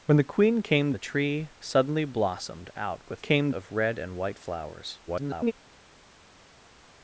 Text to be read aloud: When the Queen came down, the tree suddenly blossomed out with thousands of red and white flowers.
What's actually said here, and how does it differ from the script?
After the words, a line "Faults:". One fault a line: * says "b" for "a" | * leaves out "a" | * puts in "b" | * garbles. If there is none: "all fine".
When the Queen came the tree suddenly blossomed out with came of red and white flowers. [garbled]
Faults:
* leaves out "down"
* says "came" for "thousands"
* garbles